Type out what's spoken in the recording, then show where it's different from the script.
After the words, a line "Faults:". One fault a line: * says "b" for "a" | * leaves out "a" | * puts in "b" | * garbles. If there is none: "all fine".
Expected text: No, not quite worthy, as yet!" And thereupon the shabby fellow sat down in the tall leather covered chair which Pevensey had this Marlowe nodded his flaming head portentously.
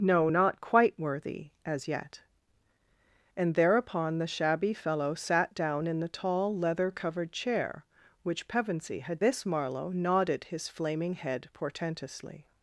No, not quite worthy, as yet!" And thereupon the shabby fellow sat down in the tall leather covered chair which Pevensey had this Marlowe nodded his flaming head portentously.
Faults:
all fine